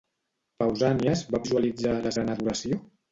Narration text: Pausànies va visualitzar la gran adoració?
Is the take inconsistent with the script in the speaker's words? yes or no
no